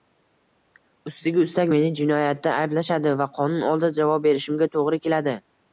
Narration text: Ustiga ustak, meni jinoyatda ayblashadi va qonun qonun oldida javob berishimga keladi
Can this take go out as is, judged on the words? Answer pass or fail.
fail